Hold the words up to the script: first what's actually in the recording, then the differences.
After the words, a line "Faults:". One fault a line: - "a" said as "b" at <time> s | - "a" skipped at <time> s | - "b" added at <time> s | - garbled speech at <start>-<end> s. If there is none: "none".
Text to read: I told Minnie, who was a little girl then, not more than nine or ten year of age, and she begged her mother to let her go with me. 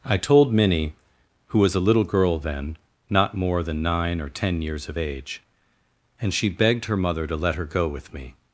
I told Minnie, who was a little girl then, not more than nine or ten years of age, and she begged her mother to let her go with me.
Faults:
- "year" said as "years" at 4.6 s